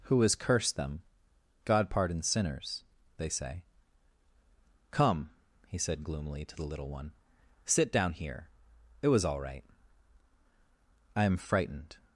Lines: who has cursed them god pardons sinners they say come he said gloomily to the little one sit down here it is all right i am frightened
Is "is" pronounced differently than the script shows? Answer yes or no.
yes